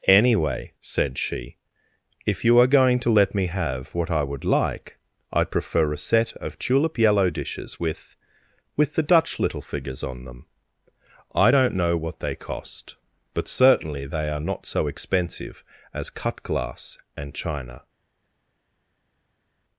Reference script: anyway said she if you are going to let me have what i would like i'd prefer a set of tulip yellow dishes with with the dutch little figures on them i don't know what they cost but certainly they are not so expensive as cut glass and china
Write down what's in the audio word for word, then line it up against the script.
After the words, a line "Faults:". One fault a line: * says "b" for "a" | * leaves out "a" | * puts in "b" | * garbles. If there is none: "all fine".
anyway said she if you are going to let me have what i would like i'd prefer a set of tulip yellow dishes with with the dutch little figures on them i don't know what they cost but certainly they are not so expensive as cut glass and china
Faults:
all fine